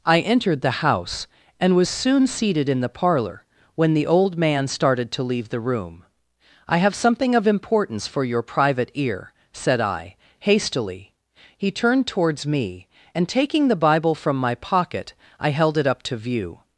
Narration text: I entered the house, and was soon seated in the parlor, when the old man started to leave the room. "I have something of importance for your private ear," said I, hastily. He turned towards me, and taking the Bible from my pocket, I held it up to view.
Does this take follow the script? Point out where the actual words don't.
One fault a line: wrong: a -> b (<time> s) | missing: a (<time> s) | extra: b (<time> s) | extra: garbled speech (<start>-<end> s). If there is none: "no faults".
no faults